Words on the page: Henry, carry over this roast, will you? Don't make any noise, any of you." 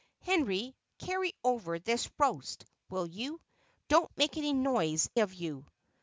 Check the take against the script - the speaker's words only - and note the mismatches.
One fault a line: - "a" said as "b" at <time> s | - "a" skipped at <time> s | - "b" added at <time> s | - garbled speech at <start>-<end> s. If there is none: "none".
- "any" skipped at 5.1 s